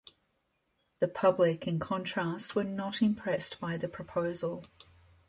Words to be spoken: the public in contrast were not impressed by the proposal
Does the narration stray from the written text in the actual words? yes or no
no